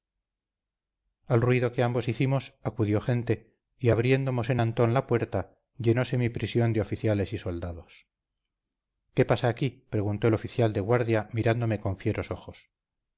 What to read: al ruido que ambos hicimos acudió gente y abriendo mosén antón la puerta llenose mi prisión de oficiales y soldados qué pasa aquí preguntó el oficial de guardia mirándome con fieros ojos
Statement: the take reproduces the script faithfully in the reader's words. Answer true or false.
true